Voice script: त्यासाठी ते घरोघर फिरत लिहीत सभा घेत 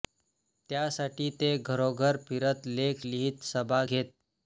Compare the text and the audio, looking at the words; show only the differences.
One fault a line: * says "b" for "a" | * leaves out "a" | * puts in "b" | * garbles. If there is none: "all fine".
* puts in "लेख"